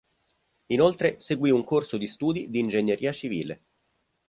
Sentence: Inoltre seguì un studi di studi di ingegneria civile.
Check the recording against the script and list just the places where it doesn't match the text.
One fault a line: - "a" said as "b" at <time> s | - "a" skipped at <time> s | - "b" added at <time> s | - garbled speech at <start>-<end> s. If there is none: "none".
- "studi" said as "corso" at 1.6 s